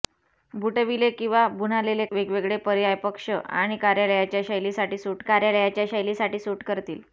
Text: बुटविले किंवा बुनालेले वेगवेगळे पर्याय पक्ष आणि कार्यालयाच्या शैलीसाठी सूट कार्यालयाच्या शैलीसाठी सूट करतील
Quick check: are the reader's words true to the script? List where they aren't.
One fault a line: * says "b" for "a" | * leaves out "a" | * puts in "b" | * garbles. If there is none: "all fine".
all fine